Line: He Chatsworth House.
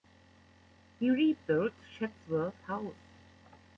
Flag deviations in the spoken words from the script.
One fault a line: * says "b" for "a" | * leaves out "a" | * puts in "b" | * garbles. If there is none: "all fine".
* puts in "rebuilt"